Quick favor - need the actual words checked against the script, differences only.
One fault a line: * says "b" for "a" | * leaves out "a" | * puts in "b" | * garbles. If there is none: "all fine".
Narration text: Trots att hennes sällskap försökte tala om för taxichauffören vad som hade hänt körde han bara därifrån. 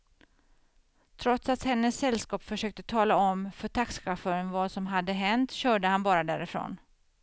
all fine